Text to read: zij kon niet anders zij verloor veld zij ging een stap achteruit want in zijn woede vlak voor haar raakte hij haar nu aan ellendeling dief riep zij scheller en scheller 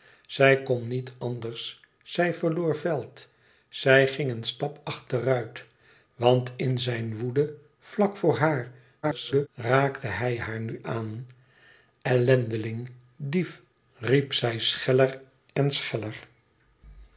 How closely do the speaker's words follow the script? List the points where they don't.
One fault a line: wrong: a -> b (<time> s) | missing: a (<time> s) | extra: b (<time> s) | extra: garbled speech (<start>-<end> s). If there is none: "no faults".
extra: garbled speech (9.0-9.5 s)